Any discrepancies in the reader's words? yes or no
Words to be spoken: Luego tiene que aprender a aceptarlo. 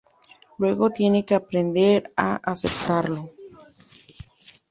no